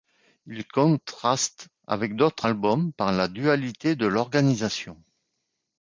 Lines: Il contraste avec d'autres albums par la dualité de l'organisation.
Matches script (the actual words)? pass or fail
pass